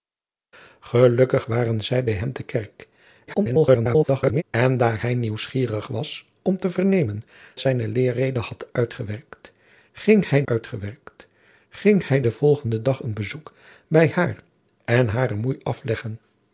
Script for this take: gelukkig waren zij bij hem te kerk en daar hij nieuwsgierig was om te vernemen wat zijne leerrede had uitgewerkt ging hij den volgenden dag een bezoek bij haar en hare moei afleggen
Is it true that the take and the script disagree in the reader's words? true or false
true